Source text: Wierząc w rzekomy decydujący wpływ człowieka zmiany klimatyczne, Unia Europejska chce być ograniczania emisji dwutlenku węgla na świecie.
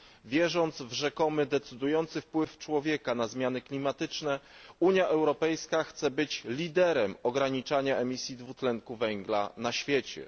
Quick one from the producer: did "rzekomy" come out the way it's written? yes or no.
yes